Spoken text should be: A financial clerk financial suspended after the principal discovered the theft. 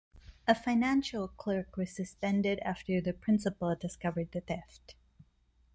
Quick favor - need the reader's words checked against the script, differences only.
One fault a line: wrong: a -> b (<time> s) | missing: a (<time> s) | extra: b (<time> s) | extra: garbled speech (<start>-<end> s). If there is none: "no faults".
wrong: financial -> was (1.8 s)